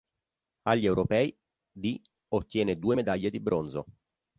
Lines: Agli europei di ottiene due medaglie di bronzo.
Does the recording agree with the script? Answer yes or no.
yes